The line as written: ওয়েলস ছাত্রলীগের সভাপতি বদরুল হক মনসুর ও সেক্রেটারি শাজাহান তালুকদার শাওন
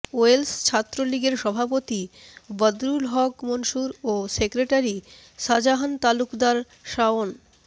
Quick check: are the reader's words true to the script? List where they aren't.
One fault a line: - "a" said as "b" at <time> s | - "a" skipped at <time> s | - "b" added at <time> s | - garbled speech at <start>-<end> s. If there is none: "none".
none